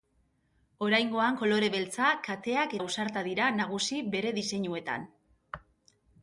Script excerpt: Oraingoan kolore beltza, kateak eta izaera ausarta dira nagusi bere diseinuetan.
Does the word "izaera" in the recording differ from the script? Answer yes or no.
yes